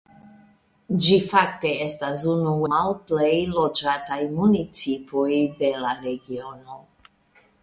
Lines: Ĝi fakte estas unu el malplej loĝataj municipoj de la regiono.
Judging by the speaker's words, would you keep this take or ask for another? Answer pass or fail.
fail